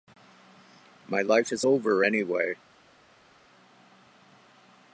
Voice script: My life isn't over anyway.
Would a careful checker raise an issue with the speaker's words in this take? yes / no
yes